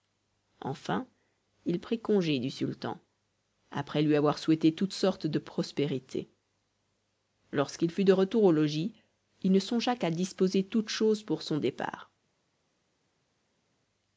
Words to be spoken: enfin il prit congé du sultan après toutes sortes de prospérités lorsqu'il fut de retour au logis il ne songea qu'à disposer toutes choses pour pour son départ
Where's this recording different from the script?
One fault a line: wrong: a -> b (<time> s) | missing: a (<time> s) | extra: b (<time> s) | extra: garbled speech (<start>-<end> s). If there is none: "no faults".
extra: lui avoir souhaité (4.0 s)
missing: pour (11.4 s)